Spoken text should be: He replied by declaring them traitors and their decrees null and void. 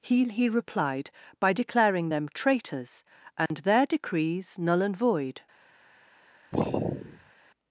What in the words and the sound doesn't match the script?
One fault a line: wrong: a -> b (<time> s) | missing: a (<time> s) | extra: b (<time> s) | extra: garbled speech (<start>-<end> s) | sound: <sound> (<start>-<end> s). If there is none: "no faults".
extra: he (0.2 s)
sound: dropout (3.5-3.5 s)
sound: sigh (6.5-7.3 s)